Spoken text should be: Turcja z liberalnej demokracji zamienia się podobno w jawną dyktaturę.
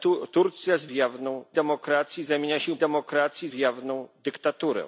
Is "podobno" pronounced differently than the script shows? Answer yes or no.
yes